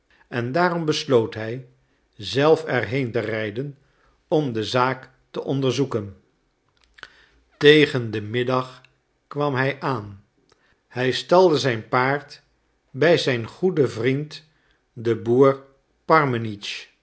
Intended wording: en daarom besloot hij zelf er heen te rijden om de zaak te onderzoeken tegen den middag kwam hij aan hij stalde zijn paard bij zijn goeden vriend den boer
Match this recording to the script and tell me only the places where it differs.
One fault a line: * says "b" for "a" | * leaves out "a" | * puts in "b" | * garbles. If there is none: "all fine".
all fine